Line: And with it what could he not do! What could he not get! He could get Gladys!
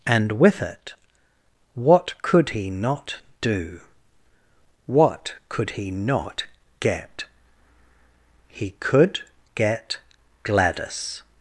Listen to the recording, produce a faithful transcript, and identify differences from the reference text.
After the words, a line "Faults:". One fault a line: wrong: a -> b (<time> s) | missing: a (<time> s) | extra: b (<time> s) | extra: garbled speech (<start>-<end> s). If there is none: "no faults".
And with it what could he not do! What could he not get! He could get Gladys!
Faults:
no faults